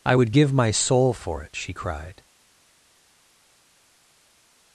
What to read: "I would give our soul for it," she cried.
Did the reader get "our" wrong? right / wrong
wrong